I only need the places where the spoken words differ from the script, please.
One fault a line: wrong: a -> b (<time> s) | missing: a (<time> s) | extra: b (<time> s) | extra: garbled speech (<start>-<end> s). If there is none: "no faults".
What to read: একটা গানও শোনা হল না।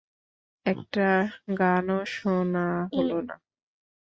no faults